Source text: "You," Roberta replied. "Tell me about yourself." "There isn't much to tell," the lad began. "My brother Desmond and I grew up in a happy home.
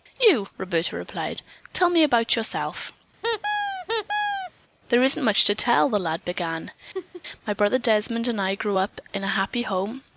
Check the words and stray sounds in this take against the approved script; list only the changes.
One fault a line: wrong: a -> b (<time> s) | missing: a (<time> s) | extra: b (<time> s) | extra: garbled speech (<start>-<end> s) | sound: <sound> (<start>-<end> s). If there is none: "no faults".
sound: squeak (3.2-4.5 s)
sound: laugh (6.9-7.2 s)